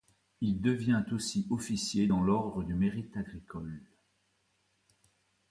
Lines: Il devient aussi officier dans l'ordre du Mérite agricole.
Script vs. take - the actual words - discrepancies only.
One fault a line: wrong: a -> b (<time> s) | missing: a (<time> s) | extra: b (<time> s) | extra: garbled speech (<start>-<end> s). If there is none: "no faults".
no faults